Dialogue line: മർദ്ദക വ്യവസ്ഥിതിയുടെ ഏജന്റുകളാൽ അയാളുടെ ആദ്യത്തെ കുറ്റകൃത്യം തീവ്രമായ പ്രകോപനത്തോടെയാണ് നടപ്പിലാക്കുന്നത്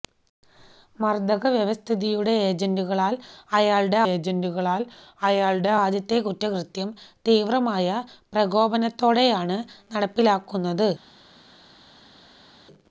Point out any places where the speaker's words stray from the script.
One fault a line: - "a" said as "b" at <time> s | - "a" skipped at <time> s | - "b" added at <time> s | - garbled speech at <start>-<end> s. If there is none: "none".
- "ഏജന്റുകളാൽ അയാളുടെ" added at 4.1 s